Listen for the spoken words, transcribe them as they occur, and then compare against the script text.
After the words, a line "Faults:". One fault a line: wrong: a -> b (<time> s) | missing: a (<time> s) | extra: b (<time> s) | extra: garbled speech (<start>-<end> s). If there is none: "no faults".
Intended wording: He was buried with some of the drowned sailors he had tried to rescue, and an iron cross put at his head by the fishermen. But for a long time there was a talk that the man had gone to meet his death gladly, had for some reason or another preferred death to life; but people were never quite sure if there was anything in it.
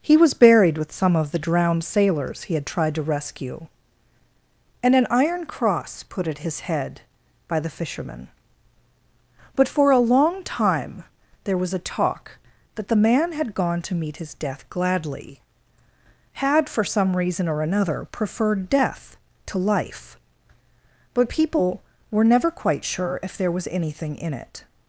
He was buried with some of the drowned sailors he had tried to rescue, and an iron cross put at his head by the fishermen. But for a long time there was a talk that the man had gone to meet his death gladly, had for some reason or another preferred death to life; but people were never quite sure if there was anything in it.
Faults:
no faults